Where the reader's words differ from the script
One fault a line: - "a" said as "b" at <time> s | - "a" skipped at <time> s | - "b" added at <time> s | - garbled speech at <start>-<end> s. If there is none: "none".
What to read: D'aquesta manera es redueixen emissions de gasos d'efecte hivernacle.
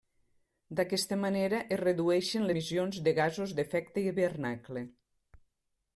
none